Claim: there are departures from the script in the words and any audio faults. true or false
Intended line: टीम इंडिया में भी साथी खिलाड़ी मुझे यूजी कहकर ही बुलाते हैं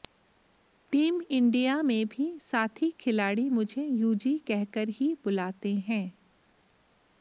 false